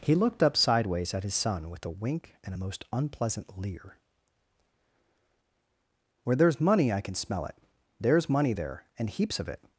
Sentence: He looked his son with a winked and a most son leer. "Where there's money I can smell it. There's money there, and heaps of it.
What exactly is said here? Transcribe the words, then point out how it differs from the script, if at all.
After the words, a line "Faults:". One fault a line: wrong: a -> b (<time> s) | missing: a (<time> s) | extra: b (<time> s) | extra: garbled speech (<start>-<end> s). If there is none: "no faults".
He looked up sideways at his son with a wink and a most unpleasant leer. "Where there's money I can smell it. There's money there, and heaps of it.
Faults:
extra: up sideways at (0.4 s)
wrong: winked -> wink (1.9 s)
wrong: son -> unpleasant (2.9 s)